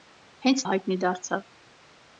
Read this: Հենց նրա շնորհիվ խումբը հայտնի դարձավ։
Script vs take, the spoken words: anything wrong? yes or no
yes